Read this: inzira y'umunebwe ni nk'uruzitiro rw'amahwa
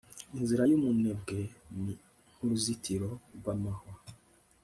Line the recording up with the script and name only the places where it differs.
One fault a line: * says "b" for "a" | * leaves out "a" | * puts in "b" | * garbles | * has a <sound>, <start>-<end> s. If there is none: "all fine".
all fine